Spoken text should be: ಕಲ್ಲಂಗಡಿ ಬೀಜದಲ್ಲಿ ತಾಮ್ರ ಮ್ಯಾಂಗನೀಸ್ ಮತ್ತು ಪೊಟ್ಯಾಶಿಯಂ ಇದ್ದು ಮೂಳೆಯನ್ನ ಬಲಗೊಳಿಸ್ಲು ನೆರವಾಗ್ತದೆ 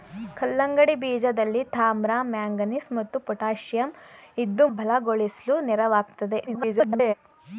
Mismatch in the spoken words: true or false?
true